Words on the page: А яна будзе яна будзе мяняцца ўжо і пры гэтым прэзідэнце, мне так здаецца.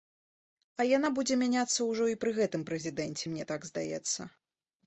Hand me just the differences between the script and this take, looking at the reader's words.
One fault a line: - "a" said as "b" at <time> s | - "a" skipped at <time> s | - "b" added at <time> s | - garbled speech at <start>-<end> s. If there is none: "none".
- "яна будзе" skipped at 1.4 s